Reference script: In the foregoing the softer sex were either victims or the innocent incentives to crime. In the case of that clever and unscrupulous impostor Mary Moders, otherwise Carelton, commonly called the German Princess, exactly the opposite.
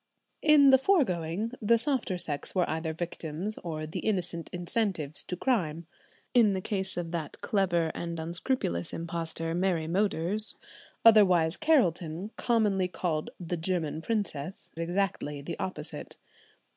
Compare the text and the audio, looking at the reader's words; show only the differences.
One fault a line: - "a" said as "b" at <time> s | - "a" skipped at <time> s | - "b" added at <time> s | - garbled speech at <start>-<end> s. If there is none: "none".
none